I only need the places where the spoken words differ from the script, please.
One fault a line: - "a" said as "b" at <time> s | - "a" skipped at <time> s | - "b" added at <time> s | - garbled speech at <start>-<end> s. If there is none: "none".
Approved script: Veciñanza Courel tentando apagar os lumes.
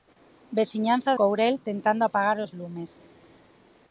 none